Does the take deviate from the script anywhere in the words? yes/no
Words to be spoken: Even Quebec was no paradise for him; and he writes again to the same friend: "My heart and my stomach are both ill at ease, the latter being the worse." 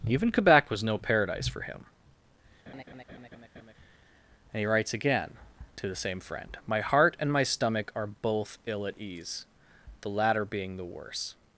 no